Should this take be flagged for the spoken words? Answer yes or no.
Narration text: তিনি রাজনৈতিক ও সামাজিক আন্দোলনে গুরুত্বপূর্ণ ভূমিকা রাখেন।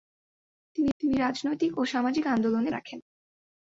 yes